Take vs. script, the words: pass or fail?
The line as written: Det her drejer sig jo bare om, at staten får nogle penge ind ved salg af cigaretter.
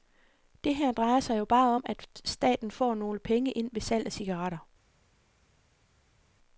pass